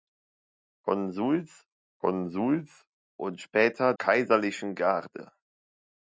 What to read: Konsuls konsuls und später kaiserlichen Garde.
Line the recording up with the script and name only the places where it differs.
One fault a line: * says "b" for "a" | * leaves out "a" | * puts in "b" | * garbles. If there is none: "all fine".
all fine